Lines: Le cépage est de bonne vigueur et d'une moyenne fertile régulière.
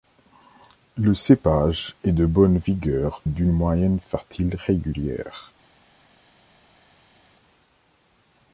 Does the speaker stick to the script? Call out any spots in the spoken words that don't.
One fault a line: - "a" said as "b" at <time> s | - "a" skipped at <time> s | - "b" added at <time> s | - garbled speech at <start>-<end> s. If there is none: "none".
- "et" skipped at 3.2 s